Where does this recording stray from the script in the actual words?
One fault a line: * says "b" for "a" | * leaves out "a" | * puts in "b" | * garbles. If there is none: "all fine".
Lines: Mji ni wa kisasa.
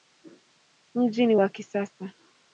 all fine